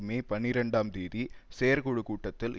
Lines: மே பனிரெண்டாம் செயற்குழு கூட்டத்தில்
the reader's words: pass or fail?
fail